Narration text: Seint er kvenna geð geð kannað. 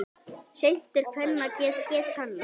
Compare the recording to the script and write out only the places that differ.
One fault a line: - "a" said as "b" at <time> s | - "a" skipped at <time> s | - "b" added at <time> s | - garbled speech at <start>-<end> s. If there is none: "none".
none